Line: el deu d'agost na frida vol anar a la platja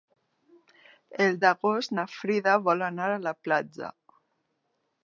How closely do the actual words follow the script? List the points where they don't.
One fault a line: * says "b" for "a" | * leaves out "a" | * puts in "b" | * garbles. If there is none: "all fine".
* leaves out "deu"